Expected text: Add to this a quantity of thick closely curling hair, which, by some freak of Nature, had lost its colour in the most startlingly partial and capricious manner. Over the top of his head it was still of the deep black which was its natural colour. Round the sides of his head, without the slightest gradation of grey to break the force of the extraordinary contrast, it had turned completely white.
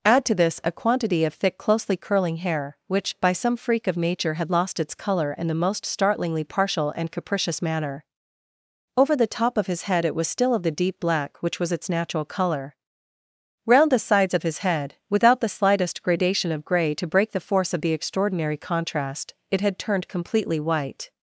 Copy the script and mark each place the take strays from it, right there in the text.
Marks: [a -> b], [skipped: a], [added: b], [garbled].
Add to this a quantity of thick closely curling hair, which, by some freak of Nature, had lost its colour in the most startlingly partial and capricious manner. Over the top of his head it was still of the deep black which was its natural colour. Round the sides of his head, without the slightest gradation of grey to break the force of the extraordinary contrast, it had turned completely white.